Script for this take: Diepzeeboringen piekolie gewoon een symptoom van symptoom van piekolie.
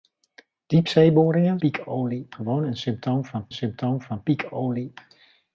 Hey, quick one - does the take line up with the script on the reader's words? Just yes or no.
yes